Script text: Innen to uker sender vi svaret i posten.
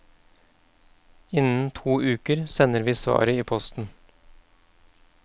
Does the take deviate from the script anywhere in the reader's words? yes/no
no